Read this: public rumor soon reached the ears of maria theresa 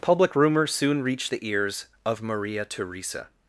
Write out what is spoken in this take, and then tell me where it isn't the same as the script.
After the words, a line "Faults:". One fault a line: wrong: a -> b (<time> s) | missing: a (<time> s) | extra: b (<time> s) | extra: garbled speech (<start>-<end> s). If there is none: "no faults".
public rumor soon reached the ears of maria theresa
Faults:
no faults